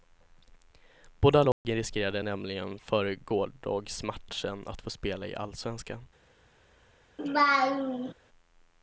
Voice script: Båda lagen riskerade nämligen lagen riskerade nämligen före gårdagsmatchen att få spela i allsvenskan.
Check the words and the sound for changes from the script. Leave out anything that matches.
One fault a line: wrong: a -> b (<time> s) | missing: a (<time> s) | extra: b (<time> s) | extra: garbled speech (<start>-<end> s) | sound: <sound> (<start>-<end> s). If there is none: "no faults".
sound: dropout (1.5-1.6 s)
missing: lagen riskerade nämligen (2.8 s)
sound: laugh (7.2-8.1 s)